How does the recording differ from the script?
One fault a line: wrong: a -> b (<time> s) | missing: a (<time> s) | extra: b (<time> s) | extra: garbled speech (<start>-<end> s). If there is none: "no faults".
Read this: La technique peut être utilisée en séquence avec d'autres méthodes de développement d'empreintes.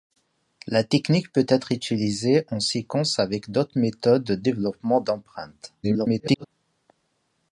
extra: garbled speech (5.8-6.5 s)